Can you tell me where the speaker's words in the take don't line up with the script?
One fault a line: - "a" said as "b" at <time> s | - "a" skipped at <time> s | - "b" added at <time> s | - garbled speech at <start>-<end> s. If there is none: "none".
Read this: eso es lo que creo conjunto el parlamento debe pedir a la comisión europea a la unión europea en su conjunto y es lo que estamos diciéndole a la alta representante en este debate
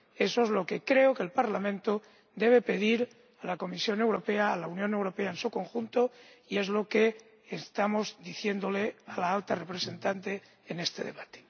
- "conjunto" said as "que" at 1.1 s